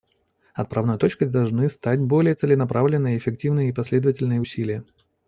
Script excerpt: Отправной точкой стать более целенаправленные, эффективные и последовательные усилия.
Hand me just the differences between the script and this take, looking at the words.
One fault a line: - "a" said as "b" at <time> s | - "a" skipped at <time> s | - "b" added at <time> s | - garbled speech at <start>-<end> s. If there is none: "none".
- "должны" added at 1.3 s